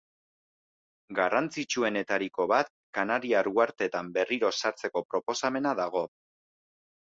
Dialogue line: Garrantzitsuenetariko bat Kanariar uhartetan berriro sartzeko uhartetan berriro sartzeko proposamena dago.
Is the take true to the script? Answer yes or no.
no